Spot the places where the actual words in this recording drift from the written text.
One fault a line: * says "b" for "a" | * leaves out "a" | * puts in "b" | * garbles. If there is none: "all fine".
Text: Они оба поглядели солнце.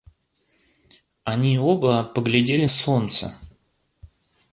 all fine